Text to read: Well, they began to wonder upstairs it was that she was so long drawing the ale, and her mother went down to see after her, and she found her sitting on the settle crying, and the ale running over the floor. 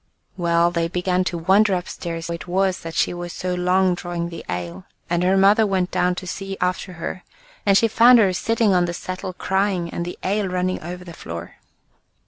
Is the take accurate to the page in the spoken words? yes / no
yes